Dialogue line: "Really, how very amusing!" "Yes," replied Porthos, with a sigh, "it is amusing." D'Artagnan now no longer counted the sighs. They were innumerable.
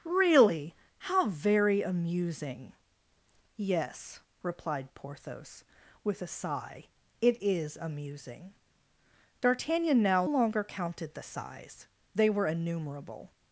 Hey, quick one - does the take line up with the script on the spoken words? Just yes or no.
no